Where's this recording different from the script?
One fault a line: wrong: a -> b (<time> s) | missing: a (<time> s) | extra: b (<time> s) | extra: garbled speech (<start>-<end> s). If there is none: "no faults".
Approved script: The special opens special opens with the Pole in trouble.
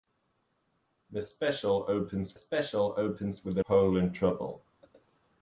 no faults